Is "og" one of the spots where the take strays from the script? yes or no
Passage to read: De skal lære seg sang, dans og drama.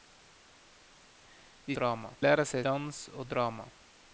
no